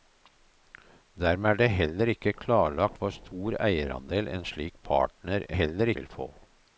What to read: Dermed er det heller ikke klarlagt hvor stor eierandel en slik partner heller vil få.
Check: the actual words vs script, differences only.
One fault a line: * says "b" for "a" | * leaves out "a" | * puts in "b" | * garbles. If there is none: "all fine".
all fine